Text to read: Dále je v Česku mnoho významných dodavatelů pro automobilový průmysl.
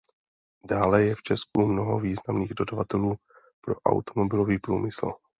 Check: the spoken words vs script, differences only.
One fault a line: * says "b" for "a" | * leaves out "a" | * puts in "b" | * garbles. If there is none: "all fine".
all fine